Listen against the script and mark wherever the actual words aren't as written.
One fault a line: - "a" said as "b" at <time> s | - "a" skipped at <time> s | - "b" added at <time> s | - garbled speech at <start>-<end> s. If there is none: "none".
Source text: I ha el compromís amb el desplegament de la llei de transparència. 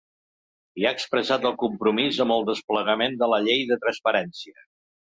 - "expressat" added at 1.0 s